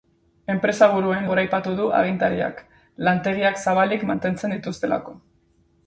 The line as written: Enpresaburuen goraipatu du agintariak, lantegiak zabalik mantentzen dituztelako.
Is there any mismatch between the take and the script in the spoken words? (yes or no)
no